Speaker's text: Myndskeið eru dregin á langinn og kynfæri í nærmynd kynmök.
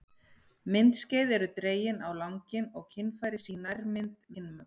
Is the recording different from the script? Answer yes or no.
no